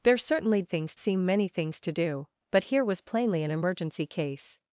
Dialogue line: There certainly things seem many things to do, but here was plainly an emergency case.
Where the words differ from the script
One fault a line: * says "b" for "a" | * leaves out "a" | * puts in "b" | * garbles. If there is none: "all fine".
all fine